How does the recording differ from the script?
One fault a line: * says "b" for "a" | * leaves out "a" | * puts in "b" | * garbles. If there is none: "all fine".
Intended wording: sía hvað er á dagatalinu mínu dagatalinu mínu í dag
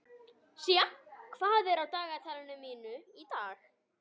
* leaves out "dagatalinu mínu"